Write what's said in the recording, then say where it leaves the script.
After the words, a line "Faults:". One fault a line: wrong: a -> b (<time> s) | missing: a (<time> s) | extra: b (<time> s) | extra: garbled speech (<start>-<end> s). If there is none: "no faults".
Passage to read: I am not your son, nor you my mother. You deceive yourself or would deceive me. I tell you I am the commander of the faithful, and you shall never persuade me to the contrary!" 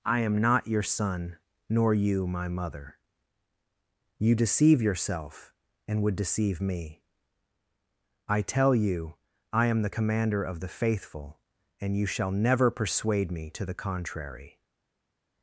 I am not your son, nor you my mother. You deceive yourself and would deceive me. I tell you I am the commander of the faithful, and you shall never persuade me to the contrary!"
Faults:
wrong: or -> and (5.9 s)